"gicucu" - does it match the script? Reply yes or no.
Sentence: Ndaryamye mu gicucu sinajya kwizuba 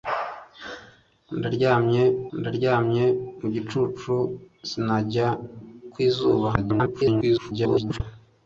yes